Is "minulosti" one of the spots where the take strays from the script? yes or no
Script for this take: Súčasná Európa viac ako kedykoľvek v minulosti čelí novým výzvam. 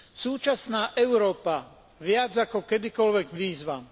yes